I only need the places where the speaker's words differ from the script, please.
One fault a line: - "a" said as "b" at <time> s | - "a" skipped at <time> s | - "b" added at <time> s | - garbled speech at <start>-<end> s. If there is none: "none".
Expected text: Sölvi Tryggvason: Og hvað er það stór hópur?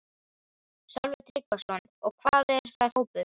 - "stór" skipped at 2.9 s